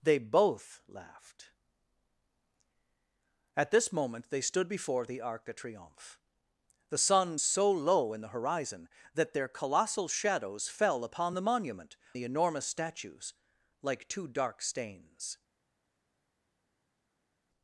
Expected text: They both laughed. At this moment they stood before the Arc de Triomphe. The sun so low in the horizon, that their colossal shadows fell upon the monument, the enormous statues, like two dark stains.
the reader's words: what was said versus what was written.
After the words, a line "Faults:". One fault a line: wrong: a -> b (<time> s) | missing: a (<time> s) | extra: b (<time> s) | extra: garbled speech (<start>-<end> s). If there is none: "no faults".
They both laughed. At this moment they stood before the Arc de Triomphe. The sun so low in the horizon, that their colossal shadows fell upon the monument, the enormous statues, like two dark stains.
Faults:
no faults